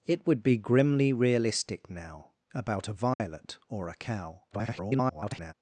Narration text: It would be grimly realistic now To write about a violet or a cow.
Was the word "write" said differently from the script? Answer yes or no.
yes